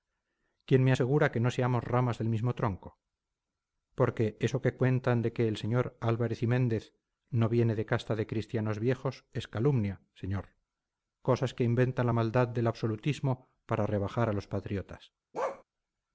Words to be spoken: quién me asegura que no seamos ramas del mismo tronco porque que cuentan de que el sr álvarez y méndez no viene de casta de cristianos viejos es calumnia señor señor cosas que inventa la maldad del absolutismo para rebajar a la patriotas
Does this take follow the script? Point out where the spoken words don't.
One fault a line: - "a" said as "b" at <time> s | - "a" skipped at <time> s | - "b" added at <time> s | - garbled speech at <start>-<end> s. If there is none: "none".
- "eso" added at 4.4 s
- "señor" skipped at 10.5 s
- "la" said as "los" at 14.3 s